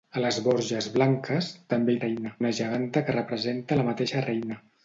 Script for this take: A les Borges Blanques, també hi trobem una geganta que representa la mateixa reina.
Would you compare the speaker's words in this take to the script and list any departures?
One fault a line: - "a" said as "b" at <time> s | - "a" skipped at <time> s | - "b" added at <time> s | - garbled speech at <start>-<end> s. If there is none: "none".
- "trobem" said as "reina" at 2.0 s